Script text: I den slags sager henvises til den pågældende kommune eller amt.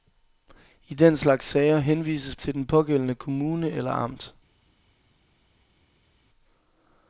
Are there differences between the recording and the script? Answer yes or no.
no